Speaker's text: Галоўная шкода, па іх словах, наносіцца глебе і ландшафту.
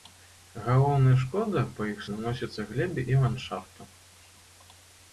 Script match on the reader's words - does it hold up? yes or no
no